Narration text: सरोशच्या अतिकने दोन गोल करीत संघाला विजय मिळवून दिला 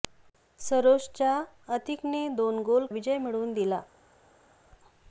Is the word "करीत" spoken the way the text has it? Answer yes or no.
no